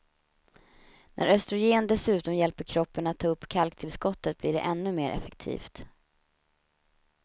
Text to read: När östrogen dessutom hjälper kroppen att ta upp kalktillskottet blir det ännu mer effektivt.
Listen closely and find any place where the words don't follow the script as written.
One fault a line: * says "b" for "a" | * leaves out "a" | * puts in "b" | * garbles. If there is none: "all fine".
all fine